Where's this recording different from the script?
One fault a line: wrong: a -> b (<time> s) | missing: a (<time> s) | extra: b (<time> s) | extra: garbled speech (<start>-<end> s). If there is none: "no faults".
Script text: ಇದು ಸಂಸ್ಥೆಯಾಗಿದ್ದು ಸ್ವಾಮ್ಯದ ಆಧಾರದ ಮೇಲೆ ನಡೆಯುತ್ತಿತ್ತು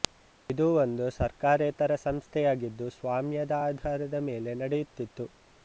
extra: ಒಂದು ಸರ್ಕಾರೇತರ (0.8 s)